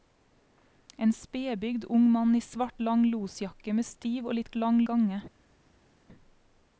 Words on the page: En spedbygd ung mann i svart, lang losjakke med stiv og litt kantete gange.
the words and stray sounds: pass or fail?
fail